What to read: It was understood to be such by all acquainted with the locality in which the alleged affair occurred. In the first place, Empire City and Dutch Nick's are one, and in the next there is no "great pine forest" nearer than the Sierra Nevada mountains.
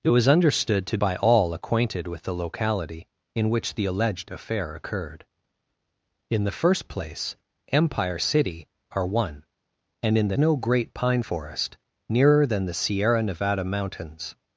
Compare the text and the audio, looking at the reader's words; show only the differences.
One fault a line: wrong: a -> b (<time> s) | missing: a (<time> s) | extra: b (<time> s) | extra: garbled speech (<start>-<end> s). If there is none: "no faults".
missing: be such (1.0 s)
missing: and Dutch Nick's (8.7 s)
missing: next there is (10.4 s)